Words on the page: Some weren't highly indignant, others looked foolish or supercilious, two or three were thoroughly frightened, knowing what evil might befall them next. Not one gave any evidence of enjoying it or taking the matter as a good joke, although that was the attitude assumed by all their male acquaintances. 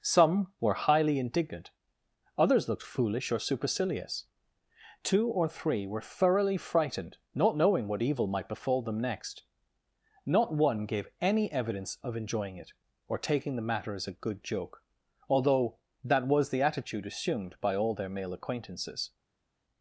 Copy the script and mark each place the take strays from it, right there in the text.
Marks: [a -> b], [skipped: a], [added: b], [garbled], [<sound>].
Some [weren't -> were] highly indignant, others looked foolish or supercilious, two or three were thoroughly frightened, [added: not] knowing what evil might befall them next. Not one gave any evidence of enjoying it or taking the matter as a good joke, although that was the attitude assumed by all their male acquaintances.